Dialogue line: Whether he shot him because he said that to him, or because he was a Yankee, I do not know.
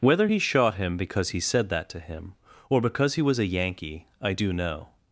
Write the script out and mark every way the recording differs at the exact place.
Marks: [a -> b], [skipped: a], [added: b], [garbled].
Whether he shot him because he said that to him, or because he was a Yankee, I do [skipped: not] know.